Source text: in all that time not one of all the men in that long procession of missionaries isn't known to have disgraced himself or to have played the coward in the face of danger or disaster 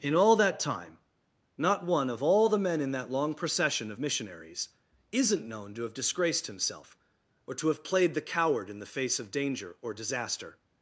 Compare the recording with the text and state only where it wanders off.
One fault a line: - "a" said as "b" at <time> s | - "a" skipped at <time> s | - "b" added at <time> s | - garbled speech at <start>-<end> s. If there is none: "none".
none